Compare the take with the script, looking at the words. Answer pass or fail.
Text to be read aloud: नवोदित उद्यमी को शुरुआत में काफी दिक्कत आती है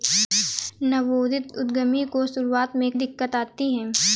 fail